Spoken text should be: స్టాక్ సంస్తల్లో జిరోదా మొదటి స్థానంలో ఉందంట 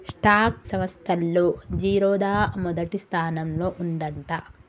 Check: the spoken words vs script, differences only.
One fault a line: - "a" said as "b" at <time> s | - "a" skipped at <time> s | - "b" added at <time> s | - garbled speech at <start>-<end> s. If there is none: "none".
none